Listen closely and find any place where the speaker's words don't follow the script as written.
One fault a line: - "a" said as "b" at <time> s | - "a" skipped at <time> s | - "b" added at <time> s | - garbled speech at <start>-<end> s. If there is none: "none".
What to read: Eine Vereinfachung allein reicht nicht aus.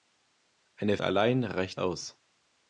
- "Vereinfachung" skipped at 1.0 s
- "nicht" skipped at 1.8 s